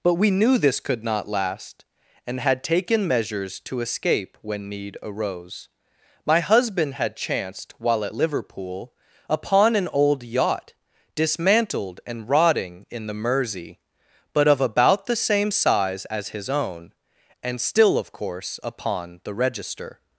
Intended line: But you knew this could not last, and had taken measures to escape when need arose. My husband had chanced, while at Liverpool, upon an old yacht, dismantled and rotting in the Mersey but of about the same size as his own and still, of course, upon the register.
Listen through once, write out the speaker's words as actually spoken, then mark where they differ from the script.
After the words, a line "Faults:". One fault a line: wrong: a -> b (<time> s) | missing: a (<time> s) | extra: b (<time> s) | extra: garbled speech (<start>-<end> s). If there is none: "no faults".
But we knew this could not last, and had taken measures to escape when need arose. My husband had chanced, while at Liverpool, upon an old yacht, dismantled and rotting in the Mersey but of about the same size as his own and still, of course, upon the register.
Faults:
wrong: you -> we (0.1 s)